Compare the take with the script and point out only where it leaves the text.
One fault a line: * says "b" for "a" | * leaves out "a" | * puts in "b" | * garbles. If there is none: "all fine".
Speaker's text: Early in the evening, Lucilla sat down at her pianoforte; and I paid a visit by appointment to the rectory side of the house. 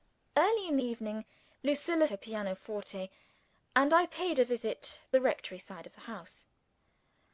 * leaves out "the"
* leaves out "sat down at"
* leaves out "by appointment to"